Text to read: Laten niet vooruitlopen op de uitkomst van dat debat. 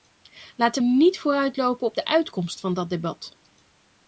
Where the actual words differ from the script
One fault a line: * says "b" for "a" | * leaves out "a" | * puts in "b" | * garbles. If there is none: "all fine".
all fine